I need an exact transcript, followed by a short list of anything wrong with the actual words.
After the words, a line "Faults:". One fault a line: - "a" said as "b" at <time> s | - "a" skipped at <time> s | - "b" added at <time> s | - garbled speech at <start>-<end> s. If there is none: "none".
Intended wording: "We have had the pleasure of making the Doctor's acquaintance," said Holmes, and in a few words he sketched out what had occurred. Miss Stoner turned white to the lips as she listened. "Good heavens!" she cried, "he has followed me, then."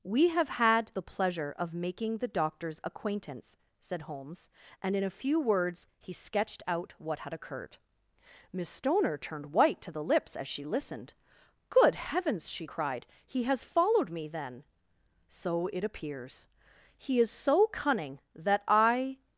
"We have had the pleasure of making the Doctor's acquaintance," said Holmes, and in a few words he sketched out what had occurred. Miss Stoner turned white to the lips as she listened. "Good heavens!" she cried, "he has followed me, then." "So it appears." "He is so cunning that I
Faults:
- "So it appears He is so cunning that I" added at 15.3 s